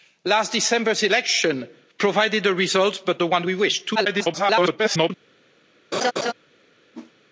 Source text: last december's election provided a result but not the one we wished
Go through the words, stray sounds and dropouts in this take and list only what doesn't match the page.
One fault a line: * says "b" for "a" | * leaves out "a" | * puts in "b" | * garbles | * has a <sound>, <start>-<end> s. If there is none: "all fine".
* leaves out "not"
* garbles
* has a laugh, 5.9-6.3 s
* has a whoosh, 6.9-7.1 s